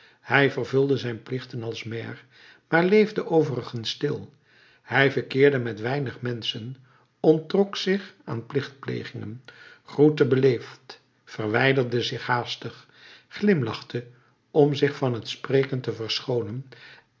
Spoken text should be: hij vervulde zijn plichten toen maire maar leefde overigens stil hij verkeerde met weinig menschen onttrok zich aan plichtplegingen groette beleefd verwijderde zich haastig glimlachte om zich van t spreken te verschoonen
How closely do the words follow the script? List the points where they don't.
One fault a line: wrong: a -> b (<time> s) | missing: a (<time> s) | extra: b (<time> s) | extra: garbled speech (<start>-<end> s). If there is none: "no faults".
wrong: toen -> als (1.6 s)